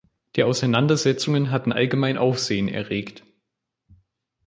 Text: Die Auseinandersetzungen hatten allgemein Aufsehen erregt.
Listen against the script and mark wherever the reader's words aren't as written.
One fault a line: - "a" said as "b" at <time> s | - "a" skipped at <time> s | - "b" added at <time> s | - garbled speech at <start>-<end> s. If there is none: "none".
none